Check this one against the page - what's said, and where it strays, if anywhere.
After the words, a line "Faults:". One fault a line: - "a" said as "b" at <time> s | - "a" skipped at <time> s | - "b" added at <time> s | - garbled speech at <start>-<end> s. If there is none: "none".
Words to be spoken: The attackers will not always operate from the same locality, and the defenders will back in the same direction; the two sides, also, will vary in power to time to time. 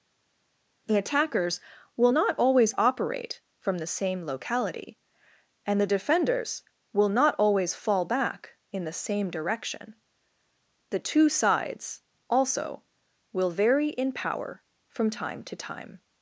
The attackers will not always operate from the same locality, and the defenders will not always fall back in the same direction; the two sides, also, will vary in power from time to time.
Faults:
- "not always fall" added at 7.1 s
- "to" said as "from" at 14.9 s